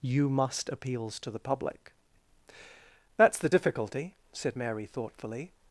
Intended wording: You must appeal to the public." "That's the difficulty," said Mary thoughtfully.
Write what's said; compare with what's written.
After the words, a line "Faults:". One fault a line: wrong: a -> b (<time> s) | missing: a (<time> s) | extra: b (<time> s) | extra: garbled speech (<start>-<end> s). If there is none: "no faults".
You must appeals to the public." "That's the difficulty," said Mary thoughtfully.
Faults:
wrong: appeal -> appeals (0.7 s)